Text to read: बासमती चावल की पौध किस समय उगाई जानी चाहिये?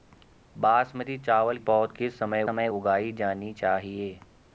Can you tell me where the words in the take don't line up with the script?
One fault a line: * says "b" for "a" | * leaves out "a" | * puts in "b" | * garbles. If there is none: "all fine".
* leaves out "की"
* puts in "समय"